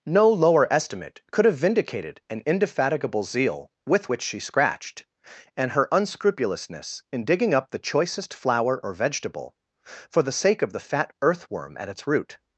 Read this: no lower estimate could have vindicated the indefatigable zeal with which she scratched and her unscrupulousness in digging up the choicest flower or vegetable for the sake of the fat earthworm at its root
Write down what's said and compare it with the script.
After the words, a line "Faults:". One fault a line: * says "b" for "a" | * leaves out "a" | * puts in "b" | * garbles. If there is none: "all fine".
no lower estimate could have vindicated an indefatigable zeal with which she scratched and her unscrupulousness in digging up the choicest flower or vegetable for the sake of the fat earthworm at its root
Faults:
* says "an" for "the"